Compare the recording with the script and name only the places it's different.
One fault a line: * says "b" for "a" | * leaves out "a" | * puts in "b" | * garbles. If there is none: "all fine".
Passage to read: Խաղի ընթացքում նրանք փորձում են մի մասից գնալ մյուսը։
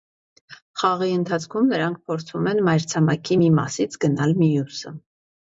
* puts in "մայրցամաքի"